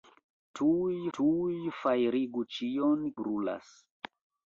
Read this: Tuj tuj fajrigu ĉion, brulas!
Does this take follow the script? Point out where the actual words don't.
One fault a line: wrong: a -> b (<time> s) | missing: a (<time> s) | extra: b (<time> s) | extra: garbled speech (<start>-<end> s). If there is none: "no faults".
no faults